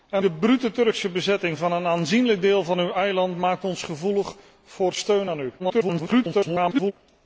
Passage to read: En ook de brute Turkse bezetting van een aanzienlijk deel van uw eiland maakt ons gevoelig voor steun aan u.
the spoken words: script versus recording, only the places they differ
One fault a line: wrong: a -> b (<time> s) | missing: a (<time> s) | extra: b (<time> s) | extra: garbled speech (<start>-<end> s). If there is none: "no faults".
missing: ook (0.2 s)
extra: garbled speech (5.6-6.9 s)